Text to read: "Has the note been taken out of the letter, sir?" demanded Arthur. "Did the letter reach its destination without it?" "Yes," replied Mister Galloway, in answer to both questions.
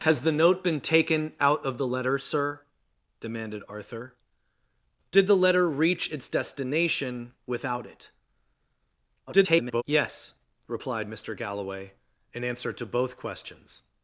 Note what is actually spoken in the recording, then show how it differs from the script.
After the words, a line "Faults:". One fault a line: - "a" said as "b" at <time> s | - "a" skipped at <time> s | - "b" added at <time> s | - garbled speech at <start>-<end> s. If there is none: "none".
"Has the note been taken out of the letter, sir?" demanded Arthur. "Did the letter reach its destination without it?" [garbled] "Yes," replied Mister Galloway, in answer to both questions.
Faults:
- garbled speech at 9.3-9.8 s